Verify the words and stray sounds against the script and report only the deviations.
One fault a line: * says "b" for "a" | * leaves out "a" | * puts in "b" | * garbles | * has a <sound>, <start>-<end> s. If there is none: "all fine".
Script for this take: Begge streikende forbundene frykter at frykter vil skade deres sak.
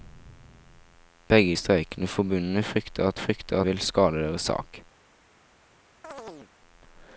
* has a chirp, 6.0-6.5 s